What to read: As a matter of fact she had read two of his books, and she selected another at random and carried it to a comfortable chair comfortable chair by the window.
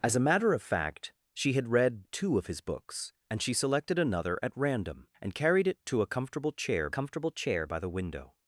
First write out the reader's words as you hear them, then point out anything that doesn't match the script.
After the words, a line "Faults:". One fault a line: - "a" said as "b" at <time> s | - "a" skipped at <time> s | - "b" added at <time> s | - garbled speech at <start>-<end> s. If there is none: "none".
As a matter of fact she had read two of his books, and she selected another at random and carried it to a comfortable chair comfortable chair by the window.
Faults:
none